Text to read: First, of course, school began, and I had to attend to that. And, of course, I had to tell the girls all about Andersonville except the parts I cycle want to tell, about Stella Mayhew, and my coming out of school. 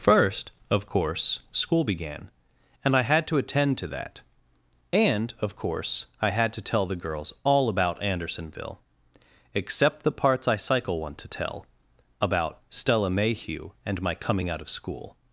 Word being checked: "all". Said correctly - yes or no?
yes